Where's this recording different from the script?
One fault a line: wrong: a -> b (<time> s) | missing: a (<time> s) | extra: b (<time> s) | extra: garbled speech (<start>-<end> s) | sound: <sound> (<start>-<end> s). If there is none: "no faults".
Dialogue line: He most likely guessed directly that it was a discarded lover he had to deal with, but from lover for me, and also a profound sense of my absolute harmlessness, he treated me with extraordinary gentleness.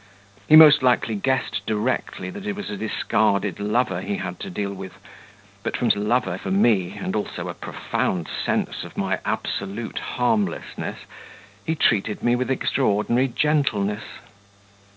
no faults